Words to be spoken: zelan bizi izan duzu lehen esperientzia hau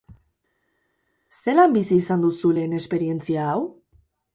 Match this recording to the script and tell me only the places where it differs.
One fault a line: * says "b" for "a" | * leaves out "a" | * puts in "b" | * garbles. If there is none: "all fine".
all fine